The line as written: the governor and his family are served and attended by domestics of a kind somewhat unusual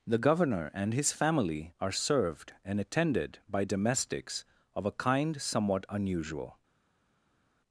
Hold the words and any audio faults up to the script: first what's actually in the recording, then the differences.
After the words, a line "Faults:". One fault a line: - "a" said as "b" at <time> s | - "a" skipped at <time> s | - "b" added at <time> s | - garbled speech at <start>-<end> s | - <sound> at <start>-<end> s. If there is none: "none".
the governor and his family are served and attended by domestics of a kind somewhat unusual
Faults:
none